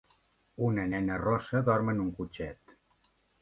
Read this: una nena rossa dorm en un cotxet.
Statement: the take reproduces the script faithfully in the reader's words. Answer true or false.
true